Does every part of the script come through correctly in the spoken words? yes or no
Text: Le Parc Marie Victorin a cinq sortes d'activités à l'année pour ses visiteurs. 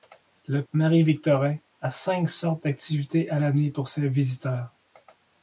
no